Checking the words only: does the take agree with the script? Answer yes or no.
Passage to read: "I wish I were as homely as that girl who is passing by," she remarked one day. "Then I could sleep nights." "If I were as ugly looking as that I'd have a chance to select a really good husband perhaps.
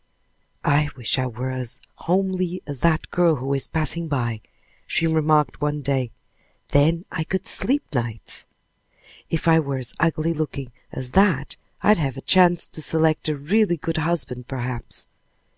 yes